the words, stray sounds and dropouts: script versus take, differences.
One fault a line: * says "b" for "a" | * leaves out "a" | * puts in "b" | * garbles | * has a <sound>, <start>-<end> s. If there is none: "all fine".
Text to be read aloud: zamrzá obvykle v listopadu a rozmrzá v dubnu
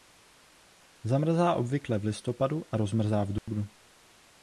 * has a dropout, 3.4-3.5 s